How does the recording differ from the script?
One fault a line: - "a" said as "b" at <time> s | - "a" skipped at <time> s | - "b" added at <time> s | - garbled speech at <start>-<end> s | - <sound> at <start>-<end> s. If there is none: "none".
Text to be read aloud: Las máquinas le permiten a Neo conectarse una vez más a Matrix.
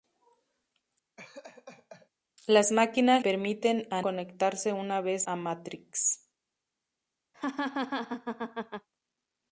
- laugh at 1.2-2.1 s
- "le" skipped at 3.2 s
- "Neo" skipped at 4.0 s
- "más" skipped at 5.3 s
- laugh at 7.3-8.9 s